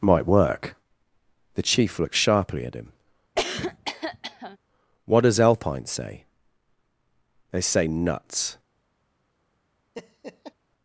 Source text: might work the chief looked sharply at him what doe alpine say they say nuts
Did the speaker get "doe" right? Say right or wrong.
wrong